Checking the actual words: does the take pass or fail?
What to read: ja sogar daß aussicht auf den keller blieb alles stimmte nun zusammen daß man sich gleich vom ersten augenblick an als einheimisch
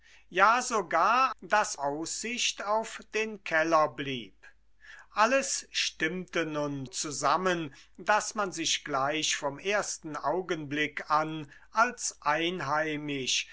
pass